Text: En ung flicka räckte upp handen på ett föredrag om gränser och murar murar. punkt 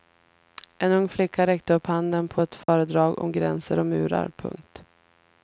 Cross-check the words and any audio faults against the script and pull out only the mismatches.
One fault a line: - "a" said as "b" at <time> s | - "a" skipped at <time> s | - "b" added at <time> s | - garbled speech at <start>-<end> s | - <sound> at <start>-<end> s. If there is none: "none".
- dropout at 2.6-2.7 s
- "murar" skipped at 4.3 s